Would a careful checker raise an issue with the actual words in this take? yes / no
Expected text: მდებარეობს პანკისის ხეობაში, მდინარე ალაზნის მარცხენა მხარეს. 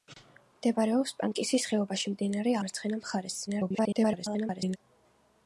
yes